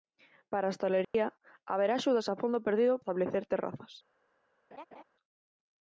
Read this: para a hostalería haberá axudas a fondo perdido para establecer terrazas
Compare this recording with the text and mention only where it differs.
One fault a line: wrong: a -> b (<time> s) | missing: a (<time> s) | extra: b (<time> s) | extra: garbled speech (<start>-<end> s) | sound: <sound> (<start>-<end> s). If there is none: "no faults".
sound: dropout (1.0-1.1 s)
missing: para (2.9 s)
sound: laugh (4.7-5.0 s)